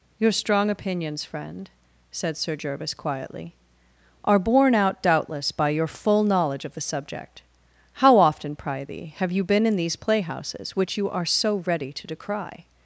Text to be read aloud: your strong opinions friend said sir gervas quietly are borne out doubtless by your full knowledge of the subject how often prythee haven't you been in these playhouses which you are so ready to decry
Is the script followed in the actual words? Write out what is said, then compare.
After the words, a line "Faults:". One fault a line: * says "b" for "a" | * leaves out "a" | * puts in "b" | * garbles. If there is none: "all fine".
your strong opinions friend said sir gervas quietly are borne out doubtless by your full knowledge of the subject how often prythee have you been in these playhouses which you are so ready to decry
Faults:
* says "have" for "haven't"